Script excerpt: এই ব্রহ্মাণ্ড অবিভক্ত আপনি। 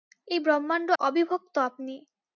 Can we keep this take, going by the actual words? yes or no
yes